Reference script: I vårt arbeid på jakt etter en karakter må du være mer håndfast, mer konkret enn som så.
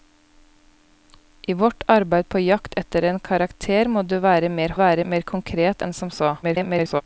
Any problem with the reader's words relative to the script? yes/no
yes